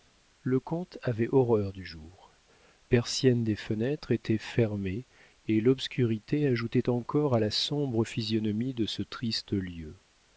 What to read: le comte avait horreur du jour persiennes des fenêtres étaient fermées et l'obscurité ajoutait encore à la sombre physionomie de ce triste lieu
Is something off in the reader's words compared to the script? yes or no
no